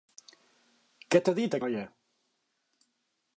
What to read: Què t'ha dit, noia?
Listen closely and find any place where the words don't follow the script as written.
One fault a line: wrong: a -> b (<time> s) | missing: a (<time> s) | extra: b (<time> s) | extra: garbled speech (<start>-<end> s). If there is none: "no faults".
no faults